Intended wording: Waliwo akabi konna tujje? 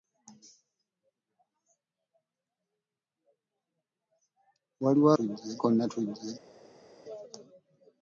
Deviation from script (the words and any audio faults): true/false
true